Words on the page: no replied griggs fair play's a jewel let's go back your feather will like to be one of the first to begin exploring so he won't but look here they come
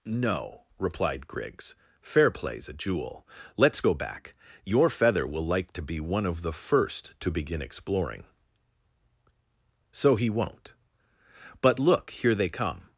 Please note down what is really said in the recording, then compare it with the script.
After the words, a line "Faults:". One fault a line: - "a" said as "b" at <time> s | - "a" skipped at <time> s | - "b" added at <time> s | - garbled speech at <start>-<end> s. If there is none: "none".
no replied griggs fair play's a jewel let's go back your feather will like to be one of the first to begin exploring so he won't but look here they come
Faults:
none